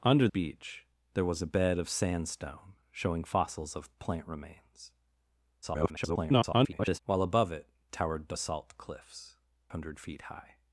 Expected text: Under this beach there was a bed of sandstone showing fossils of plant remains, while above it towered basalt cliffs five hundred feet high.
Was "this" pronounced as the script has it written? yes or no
no